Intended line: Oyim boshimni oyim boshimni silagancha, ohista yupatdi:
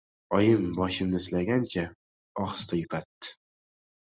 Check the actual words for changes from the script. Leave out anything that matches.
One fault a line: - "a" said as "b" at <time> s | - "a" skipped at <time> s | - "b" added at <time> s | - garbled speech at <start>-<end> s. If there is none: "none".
- "oyim boshimni" skipped at 1.2 s